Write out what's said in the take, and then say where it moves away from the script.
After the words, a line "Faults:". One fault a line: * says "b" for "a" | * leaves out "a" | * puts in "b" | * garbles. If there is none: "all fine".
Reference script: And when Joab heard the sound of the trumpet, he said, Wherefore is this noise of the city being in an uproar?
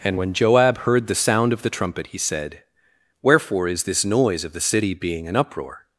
And when Joab heard the sound of the trumpet, he said, Wherefore is this noise of the city being an uproar?
Faults:
* leaves out "in"